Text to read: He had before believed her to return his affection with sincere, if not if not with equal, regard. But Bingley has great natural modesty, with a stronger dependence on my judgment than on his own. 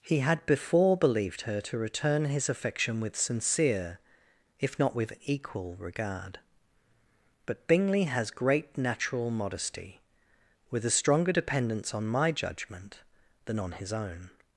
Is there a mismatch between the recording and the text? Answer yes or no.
yes